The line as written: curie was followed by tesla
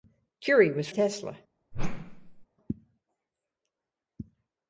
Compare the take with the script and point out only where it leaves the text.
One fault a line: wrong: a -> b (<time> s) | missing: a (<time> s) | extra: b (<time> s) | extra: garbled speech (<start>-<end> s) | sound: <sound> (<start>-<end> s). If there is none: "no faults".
missing: followed by (0.9 s)
sound: whoosh (1.7-2.5 s)